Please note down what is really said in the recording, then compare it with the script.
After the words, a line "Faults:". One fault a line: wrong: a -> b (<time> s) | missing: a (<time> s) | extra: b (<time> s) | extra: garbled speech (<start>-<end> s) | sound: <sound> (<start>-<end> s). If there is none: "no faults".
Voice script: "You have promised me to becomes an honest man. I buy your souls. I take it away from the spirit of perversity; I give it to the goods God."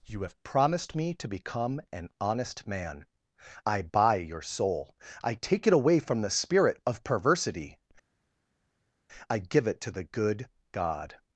"You have promised me to become an honest man. I buy your soul. I take it away from the spirit of perversity; I give it to the good God."
Faults:
wrong: becomes -> become (1.3 s)
wrong: souls -> soul (4.4 s)
wrong: goods -> good (10.0 s)